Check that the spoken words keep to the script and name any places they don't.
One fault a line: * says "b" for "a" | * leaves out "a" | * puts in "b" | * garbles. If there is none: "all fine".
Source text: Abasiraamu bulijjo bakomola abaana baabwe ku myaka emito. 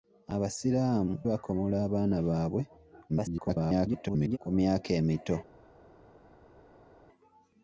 * leaves out "bulijjo"
* garbles